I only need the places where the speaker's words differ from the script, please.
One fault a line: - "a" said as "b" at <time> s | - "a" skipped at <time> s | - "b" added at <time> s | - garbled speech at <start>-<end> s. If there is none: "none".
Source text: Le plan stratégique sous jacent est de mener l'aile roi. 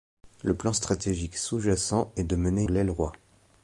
none